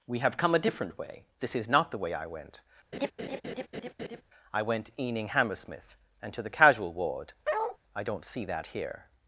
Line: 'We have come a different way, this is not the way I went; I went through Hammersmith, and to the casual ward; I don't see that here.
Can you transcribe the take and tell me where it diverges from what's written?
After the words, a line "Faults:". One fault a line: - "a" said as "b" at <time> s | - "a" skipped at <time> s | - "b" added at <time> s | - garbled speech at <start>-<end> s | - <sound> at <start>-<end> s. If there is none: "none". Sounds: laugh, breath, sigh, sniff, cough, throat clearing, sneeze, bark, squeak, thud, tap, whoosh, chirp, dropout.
'We have come a different way, this is not the way I went; I went eaning Hammersmith, and to the casual ward; I don't see that here.
Faults:
- laugh at 2.9-4.2 s
- "through" said as "eaning" at 5.0 s
- bark at 7.4-7.8 s